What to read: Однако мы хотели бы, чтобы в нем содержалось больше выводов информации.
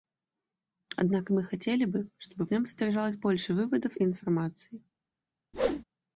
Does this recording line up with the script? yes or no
yes